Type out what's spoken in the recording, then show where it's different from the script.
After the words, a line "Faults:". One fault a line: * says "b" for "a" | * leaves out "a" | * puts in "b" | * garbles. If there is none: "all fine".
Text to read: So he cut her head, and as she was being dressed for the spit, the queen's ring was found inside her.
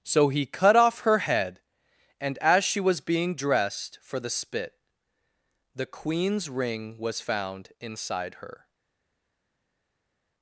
So he cut off her head, and as she was being dressed for the spit, the queen's ring was found inside her.
Faults:
* puts in "off"